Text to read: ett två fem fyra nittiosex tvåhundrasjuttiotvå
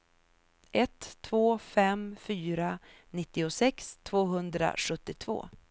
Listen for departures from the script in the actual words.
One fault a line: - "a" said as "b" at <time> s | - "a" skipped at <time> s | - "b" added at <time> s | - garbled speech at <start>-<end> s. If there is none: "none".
none